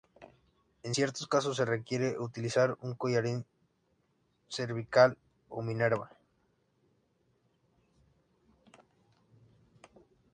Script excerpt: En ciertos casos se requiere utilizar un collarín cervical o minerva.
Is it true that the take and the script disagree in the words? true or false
false